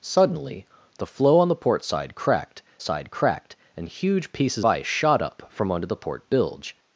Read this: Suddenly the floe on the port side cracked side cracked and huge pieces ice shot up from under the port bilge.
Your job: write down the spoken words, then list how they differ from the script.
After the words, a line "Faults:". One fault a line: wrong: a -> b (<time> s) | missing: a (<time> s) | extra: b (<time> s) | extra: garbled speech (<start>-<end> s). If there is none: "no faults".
Suddenly the floe on the port side cracked side cracked and huge pieces ice shot up from under the port bilge.
Faults:
no faults